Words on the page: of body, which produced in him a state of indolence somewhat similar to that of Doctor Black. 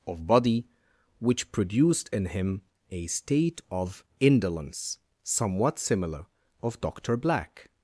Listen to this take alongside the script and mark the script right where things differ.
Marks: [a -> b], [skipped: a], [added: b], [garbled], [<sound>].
of body, which produced in him a state of indolence somewhat similar [skipped: to that] of Doctor Black.